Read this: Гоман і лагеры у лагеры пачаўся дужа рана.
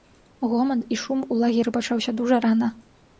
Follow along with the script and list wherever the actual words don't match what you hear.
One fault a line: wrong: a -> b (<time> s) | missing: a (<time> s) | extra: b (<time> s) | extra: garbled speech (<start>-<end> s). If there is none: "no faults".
wrong: лагеры -> шум (1.0 s)